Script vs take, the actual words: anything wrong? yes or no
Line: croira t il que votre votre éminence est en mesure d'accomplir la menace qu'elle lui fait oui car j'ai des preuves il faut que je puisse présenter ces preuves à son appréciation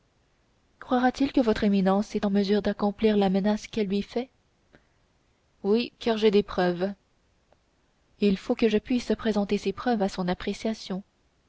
yes